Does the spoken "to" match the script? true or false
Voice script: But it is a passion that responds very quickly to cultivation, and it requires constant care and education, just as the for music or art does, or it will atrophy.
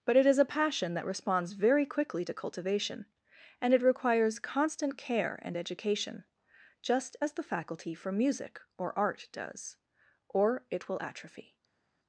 true